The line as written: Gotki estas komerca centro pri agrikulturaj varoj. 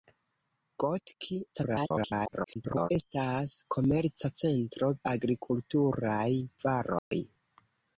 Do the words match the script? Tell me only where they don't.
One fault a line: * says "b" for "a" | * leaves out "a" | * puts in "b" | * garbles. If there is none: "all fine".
* garbles
* leaves out "pri"